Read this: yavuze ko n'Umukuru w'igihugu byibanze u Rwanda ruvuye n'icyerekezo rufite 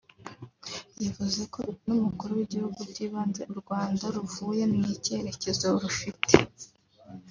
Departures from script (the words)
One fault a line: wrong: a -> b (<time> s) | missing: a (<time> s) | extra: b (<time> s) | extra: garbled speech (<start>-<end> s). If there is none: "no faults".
no faults